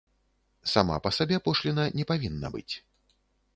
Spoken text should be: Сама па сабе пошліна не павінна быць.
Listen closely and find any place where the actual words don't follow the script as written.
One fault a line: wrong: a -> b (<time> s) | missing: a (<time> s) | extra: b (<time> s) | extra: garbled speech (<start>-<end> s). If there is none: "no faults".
no faults